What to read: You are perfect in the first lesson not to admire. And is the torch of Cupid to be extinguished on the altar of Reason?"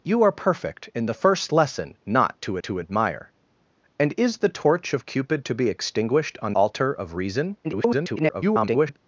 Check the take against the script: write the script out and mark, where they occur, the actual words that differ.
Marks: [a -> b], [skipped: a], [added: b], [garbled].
You are perfect in the first lesson not to [added: to] admire. And is the torch of Cupid to be extinguished on [skipped: the] altar of Reason?" [garbled]